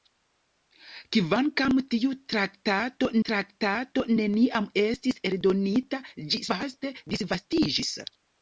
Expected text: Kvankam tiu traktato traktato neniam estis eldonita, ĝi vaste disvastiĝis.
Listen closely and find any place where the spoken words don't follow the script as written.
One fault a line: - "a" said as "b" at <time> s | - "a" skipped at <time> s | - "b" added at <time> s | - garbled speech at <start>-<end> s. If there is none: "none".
none